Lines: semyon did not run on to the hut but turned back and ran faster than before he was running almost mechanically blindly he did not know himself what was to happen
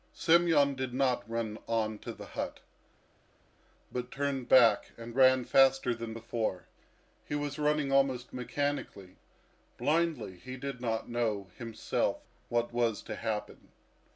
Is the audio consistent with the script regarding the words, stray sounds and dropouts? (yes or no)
yes